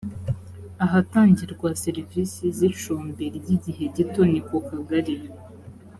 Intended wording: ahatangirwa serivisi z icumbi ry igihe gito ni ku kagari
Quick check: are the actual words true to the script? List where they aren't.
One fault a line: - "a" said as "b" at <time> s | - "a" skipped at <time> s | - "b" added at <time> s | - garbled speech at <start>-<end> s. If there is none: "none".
none